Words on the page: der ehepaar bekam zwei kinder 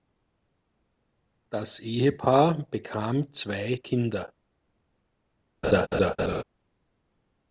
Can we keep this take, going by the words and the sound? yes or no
no